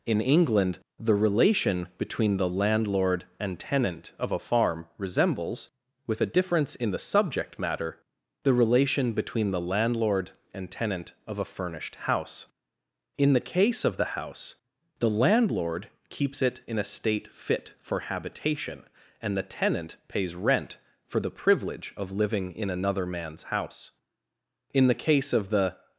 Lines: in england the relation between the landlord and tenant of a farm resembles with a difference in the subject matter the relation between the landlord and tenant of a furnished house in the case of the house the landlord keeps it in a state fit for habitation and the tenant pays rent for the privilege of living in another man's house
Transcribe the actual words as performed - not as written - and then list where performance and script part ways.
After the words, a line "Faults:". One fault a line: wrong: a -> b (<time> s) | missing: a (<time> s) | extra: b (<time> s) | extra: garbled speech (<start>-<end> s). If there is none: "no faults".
in england the relation between the landlord and tenant of a farm resembles with a difference in the subject matter the relation between the landlord and tenant of a furnished house in the case of the house the landlord keeps it in a state fit for habitation and the tenant pays rent for the privilege of living in another man's house in the case of the
Faults:
extra: in the case of the (24.7 s)